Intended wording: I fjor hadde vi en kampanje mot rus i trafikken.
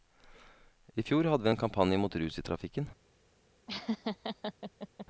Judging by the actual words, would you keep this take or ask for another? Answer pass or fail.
pass